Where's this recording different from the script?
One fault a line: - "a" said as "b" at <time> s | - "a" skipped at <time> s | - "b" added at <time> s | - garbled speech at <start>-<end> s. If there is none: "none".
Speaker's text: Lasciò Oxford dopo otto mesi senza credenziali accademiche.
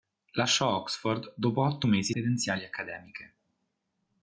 - "senza" skipped at 2.1 s